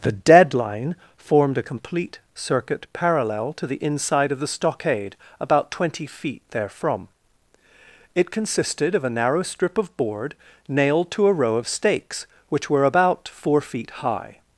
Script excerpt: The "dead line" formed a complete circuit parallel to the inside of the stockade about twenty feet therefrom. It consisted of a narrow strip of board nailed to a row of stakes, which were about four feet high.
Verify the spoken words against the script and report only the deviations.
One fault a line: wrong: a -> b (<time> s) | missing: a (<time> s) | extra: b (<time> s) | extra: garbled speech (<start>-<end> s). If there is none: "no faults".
no faults